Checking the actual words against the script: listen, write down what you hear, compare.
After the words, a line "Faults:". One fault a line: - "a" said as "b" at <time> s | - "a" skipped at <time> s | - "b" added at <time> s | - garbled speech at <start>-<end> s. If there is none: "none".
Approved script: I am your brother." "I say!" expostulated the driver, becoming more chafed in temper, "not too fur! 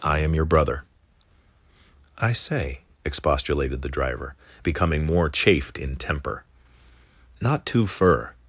I am your brother." "I say!" expostulated the driver, becoming more chafed in temper, "not too fur!
Faults:
none